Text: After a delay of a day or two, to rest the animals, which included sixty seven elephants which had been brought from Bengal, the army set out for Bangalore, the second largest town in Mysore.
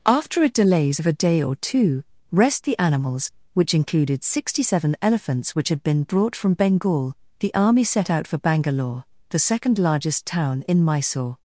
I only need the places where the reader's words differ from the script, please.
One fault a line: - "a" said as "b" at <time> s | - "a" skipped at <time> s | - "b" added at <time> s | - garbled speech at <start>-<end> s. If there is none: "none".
- "delay" said as "delays" at 0.5 s
- "to" skipped at 2.0 s